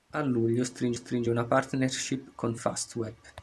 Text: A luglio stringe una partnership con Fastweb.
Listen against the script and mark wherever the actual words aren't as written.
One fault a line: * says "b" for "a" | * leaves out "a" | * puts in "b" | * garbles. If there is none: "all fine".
* puts in "stringe"